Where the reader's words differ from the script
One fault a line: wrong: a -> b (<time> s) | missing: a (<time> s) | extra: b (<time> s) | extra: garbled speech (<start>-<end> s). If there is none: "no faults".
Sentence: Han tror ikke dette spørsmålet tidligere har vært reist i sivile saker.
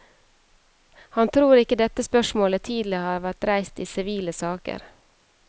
no faults